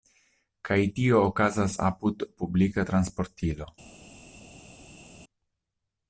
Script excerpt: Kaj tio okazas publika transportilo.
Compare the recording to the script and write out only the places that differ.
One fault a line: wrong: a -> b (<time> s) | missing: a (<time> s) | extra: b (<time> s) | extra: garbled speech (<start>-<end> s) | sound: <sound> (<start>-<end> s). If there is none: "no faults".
extra: apud (1.9 s)